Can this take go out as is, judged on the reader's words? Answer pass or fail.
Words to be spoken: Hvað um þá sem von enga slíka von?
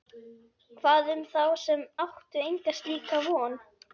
fail